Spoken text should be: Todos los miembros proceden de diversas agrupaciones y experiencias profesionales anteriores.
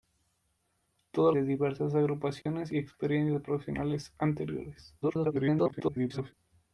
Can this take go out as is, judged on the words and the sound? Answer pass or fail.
fail